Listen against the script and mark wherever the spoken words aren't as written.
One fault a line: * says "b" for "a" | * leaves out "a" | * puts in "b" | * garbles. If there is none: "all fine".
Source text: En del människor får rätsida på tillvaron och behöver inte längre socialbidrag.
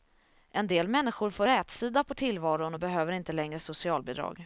all fine